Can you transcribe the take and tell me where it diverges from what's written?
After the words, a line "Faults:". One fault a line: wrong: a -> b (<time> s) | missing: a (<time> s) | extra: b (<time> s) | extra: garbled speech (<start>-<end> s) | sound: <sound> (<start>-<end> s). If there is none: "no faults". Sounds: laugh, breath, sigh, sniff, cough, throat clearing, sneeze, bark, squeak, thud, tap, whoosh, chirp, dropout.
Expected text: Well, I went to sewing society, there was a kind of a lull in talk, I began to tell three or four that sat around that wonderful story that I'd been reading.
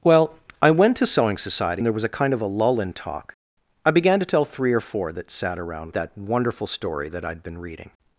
Well, I went to sewing society, there was a kind of a lull in talk, I began to tell three or four that sat around that wonderful story that I'd been reading.
Faults:
no faults